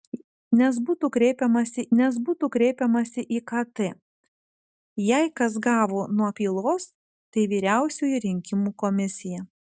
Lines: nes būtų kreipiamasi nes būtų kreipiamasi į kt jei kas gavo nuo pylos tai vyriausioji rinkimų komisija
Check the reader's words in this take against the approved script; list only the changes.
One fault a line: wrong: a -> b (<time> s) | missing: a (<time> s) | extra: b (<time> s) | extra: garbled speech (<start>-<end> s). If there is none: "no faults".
no faults